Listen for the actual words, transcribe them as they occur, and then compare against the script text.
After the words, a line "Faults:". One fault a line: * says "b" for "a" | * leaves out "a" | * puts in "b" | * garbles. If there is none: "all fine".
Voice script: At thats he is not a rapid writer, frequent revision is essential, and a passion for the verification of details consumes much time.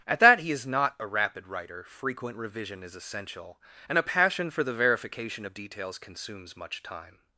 At that he is not a rapid writer, frequent revision is essential, and a passion for the verification of details consumes much time.
Faults:
* says "that" for "thats"